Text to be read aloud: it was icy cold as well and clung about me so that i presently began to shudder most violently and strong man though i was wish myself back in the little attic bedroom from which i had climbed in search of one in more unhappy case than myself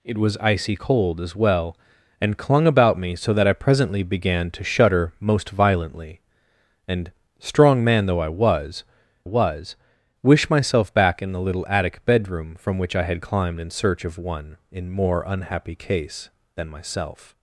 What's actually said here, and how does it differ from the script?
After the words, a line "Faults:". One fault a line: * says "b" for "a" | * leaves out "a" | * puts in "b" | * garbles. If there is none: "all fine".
it was icy cold as well and clung about me so that i presently began to shudder most violently and strong man though i was was wish myself back in the little attic bedroom from which i had climbed in search of one in more unhappy case than myself
Faults:
* puts in "was"